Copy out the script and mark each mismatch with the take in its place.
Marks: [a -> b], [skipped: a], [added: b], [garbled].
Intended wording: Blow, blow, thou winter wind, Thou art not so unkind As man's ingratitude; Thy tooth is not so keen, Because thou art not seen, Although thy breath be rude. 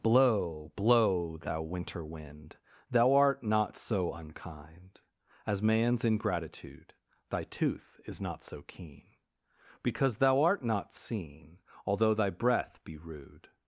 Blow, blow, thou winter wind, Thou art not so unkind As man's ingratitude; Thy tooth is not so keen, Because thou art not seen, Although thy breath be rude.